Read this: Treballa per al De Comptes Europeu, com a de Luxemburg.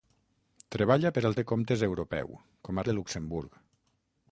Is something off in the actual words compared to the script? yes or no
no